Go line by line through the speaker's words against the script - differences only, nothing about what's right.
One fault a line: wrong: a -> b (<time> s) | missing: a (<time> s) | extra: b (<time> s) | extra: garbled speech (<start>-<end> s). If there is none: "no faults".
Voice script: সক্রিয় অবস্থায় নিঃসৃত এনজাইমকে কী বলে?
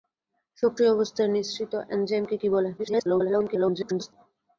extra: garbled speech (2.8-4.1 s)